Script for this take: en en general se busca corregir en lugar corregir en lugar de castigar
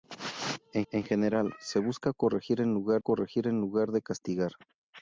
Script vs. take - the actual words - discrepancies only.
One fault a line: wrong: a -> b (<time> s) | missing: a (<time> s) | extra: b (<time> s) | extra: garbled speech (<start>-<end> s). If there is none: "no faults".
no faults